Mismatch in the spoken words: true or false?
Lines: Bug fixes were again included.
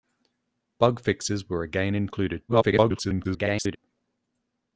true